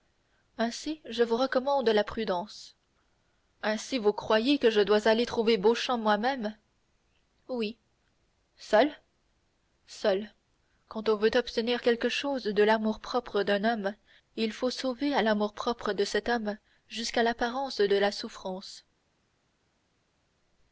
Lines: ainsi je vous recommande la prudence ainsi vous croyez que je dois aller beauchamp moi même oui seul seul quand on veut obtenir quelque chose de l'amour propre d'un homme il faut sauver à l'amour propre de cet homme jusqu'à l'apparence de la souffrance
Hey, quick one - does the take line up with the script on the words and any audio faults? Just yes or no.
no